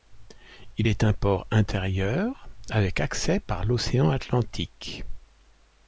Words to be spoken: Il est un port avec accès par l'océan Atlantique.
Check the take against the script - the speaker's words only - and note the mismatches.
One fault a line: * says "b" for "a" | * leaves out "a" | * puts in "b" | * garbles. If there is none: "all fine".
* puts in "intérieur"